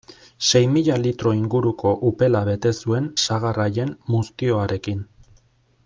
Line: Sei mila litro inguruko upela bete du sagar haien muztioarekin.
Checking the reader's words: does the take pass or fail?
fail